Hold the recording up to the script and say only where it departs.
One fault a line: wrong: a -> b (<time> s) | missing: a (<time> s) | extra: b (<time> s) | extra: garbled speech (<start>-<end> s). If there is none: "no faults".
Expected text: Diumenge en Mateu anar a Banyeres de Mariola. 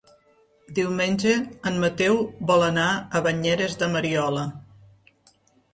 extra: vol (2.5 s)